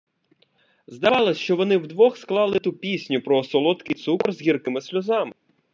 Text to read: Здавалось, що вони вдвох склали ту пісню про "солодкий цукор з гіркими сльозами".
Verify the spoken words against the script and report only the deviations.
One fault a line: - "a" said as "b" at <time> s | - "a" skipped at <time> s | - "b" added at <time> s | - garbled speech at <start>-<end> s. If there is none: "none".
none